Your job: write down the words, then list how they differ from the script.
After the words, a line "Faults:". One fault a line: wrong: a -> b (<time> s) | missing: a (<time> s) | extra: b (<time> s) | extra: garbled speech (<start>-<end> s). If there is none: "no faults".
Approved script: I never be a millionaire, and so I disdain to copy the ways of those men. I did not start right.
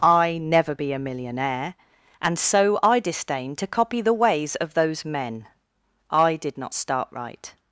I never be a millionaire, and so I disdain to copy the ways of those men. I did not start right.
Faults:
no faults